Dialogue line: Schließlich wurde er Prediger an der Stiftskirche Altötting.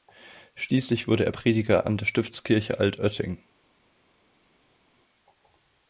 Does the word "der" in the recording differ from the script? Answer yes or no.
no